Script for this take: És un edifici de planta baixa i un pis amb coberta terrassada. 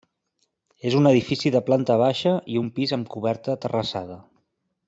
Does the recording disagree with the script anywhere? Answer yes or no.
no